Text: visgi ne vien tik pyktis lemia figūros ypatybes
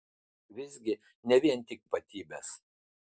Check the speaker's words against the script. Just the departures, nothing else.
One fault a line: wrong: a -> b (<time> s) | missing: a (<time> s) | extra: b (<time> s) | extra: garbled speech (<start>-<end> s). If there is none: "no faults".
missing: pyktis lemia figūros (1.8 s)